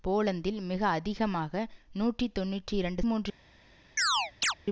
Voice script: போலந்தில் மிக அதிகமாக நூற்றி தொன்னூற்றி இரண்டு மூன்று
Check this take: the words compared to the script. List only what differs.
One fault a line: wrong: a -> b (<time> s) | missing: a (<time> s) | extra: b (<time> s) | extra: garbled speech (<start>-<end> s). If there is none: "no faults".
no faults